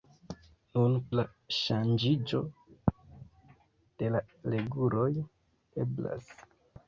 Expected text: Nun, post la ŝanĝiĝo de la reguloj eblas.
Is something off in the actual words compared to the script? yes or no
yes